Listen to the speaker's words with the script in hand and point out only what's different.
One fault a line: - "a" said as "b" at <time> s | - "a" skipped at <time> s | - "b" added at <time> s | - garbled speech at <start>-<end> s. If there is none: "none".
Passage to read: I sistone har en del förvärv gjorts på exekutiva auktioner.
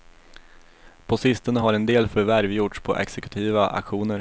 - "I" said as "På" at 1.1 s